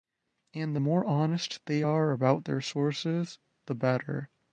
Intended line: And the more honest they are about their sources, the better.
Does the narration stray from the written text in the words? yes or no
no